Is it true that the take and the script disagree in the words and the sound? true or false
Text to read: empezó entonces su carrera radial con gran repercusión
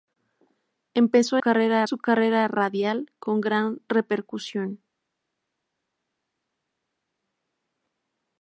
true